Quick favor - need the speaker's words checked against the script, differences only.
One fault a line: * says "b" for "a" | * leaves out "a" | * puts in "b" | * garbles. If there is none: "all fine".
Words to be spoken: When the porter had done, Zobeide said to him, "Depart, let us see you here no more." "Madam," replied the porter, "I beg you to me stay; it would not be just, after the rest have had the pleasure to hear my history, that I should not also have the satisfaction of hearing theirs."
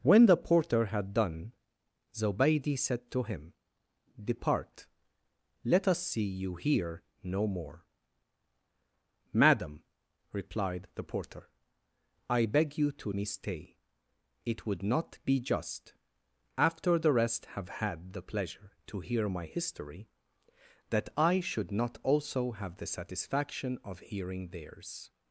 all fine